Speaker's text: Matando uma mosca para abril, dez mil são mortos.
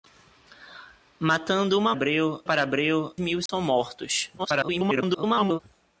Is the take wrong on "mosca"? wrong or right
wrong